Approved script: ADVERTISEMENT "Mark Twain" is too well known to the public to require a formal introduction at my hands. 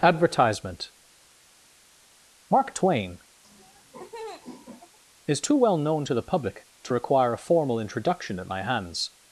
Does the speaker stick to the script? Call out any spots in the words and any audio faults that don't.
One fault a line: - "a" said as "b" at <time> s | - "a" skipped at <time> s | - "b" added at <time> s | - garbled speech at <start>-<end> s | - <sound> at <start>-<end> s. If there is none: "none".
- laugh at 3.4-5.0 s